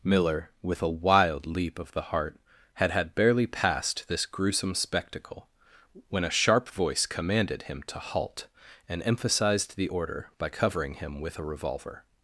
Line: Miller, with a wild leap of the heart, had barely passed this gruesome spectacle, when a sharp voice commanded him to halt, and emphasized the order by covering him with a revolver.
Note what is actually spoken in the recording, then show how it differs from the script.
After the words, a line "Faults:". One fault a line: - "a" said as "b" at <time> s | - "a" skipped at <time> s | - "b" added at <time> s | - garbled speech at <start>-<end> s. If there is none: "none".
Miller, with a wild leap of the heart, had had barely passed this gruesome spectacle, when a sharp voice commanded him to halt, and emphasized the order by covering him with a revolver.
Faults:
- "had" added at 2.9 s